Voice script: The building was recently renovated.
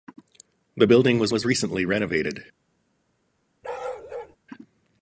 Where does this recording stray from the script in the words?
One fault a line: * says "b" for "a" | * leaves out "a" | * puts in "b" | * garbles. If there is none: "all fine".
* puts in "was"